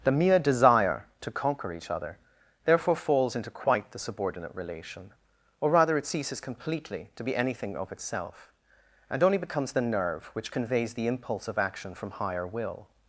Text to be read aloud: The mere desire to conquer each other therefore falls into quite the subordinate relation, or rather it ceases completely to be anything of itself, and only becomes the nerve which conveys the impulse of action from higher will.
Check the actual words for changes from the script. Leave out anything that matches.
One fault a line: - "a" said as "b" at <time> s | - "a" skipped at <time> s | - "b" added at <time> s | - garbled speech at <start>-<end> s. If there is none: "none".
none